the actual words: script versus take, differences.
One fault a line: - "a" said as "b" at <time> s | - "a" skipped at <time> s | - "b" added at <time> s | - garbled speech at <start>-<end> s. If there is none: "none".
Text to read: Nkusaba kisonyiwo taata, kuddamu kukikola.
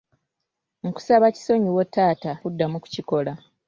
none